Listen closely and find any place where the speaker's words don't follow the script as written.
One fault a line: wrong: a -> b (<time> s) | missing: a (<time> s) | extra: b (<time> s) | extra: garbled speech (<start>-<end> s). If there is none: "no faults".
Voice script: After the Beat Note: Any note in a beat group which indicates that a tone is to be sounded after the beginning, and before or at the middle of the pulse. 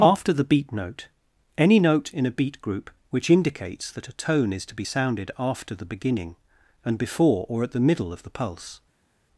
no faults